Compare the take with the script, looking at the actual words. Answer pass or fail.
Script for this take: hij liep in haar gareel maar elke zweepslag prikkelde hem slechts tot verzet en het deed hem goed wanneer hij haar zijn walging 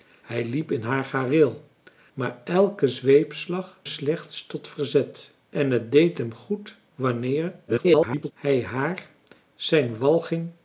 fail